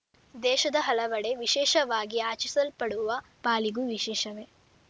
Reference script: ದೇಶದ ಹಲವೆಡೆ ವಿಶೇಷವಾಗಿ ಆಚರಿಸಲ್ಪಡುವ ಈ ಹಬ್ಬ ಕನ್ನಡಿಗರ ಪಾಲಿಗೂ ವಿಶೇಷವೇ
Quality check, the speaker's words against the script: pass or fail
fail